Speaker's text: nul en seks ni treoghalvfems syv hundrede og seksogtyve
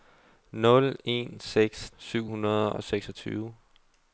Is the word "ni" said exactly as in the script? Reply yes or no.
no